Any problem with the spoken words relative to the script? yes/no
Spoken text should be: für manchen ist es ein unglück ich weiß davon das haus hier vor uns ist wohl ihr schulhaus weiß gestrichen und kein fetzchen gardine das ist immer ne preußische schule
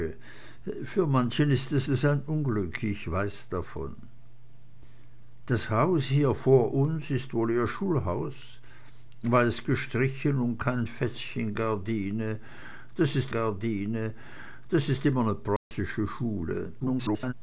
yes